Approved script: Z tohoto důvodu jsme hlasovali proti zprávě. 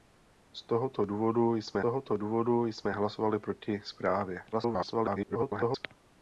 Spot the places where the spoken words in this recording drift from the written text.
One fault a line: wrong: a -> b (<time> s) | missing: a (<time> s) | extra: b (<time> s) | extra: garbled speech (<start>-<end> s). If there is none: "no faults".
extra: tohoto důvodu jsme (1.8 s)
extra: garbled speech (4.5-5.9 s)